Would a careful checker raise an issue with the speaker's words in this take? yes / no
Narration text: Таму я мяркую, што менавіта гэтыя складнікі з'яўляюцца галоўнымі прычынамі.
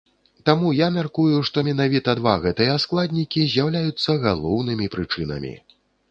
yes